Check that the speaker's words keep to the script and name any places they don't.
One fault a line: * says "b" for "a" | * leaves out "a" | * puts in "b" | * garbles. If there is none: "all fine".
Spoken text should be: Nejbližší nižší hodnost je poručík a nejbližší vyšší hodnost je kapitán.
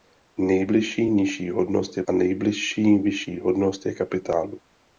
* leaves out "poručík"